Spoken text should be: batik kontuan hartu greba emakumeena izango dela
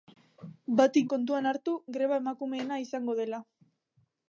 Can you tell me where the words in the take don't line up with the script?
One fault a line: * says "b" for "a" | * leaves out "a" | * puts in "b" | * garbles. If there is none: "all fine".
all fine